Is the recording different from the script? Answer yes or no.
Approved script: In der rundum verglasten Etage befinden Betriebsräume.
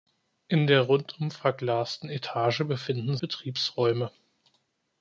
no